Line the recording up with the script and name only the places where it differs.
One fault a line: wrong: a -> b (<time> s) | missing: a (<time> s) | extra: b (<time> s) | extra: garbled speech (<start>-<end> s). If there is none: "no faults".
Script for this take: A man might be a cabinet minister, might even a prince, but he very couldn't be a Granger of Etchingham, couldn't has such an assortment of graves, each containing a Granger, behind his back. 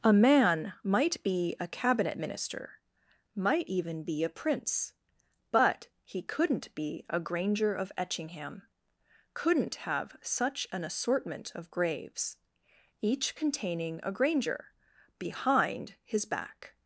extra: be (4.0 s)
missing: very (6.2 s)
wrong: has -> have (9.7 s)